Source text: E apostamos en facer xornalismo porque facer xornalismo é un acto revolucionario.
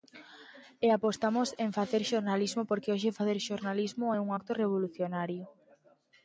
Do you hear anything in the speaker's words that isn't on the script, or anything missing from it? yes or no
yes